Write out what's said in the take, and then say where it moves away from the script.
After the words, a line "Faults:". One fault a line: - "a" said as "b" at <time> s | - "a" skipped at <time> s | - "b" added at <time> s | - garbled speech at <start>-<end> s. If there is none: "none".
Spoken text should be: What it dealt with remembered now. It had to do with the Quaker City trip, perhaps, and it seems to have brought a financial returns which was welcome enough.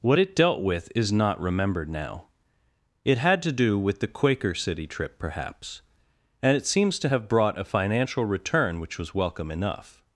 What it dealt with is not remembered now. It had to do with the Quaker City trip, perhaps, and it seems to have brought a financial return which was welcome enough.
Faults:
- "is not" added at 1.0 s
- "returns" said as "return" at 8.3 s